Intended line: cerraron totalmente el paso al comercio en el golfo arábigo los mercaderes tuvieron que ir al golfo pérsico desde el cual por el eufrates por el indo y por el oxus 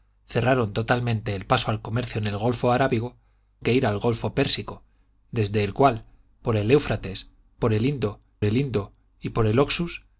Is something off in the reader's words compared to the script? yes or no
yes